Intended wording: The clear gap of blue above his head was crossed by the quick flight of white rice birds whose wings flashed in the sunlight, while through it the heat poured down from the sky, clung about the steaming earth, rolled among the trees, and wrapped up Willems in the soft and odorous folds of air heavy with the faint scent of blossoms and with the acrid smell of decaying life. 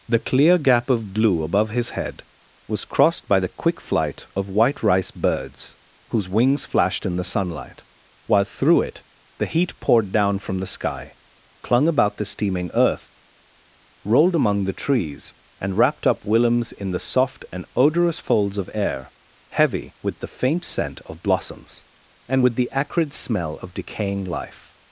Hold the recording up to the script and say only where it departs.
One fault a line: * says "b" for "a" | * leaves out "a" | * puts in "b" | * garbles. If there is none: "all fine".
all fine